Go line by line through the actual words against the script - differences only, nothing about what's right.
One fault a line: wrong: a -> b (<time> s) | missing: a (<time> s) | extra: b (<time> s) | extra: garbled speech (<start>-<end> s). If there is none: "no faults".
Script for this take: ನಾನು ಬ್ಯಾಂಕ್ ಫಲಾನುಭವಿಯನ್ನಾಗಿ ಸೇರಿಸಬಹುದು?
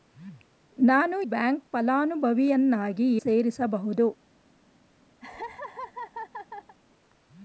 no faults